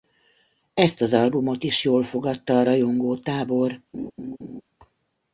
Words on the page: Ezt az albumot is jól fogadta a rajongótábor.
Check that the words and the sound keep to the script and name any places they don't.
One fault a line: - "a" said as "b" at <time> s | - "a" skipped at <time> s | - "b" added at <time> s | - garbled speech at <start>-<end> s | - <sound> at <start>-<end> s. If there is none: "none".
- laugh at 3.9-4.6 s